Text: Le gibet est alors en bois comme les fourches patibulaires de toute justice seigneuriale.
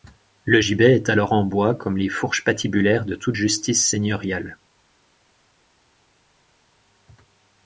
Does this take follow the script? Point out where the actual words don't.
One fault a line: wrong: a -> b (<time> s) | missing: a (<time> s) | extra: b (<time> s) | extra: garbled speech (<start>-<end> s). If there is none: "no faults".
no faults